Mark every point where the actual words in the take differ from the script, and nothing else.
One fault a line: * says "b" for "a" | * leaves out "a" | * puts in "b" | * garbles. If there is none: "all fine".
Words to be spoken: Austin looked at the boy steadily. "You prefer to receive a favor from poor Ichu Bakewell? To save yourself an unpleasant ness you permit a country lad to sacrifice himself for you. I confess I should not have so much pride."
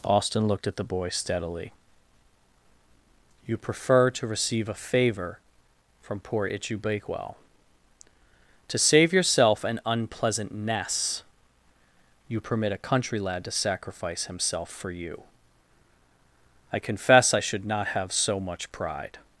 all fine